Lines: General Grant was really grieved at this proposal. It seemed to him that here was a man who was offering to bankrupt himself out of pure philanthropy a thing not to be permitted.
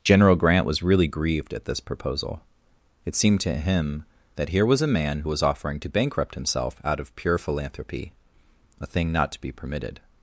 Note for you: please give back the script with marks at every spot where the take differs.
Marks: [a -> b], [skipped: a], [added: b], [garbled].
General Grant was really grieved at this proposal. It seemed to him that here was a man who was offering to bankrupt himself out of pure philanthropy a thing not to be permitted.